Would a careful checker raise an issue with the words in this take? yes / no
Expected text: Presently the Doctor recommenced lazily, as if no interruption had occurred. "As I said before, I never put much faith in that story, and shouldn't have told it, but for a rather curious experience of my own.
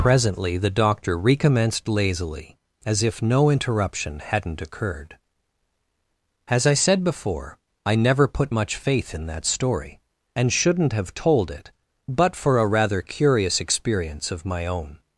yes